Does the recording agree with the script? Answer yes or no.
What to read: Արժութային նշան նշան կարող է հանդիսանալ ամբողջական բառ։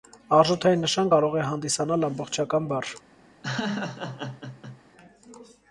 no